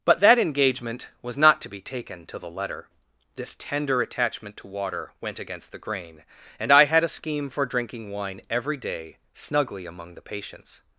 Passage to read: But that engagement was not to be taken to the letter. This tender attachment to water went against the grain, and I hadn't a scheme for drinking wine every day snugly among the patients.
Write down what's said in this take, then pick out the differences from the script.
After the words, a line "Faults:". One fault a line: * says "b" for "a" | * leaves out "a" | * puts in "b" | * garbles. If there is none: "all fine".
But that engagement was not to be taken to the letter. This tender attachment to water went against the grain, and I had a scheme for drinking wine every day snugly among the patients.
Faults:
* says "had" for "hadn't"